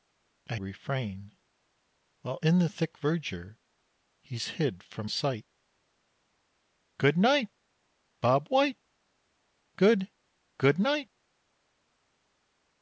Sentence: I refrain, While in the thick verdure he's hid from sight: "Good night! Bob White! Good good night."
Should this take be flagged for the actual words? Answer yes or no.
no